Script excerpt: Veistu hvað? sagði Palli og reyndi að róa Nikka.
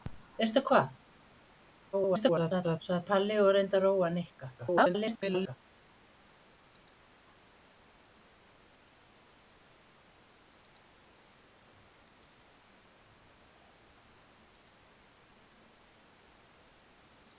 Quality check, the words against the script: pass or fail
fail